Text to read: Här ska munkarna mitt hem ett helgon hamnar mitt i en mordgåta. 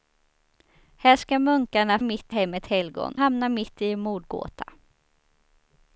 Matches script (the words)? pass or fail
pass